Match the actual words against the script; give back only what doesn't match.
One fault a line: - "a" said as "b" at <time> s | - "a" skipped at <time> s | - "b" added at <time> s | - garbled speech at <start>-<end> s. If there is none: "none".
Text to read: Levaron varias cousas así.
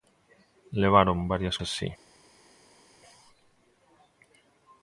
- "cousas" skipped at 1.6 s